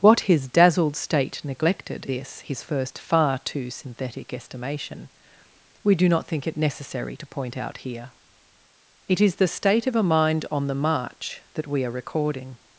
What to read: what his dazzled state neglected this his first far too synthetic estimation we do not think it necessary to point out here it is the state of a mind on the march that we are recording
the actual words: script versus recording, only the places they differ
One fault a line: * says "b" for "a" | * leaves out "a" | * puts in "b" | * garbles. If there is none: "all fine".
all fine